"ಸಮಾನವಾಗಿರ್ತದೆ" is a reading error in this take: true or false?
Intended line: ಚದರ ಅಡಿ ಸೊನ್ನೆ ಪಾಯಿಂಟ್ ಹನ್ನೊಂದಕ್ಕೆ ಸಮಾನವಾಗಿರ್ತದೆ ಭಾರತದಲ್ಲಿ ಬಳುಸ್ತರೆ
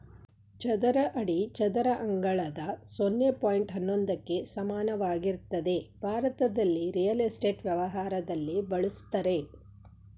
false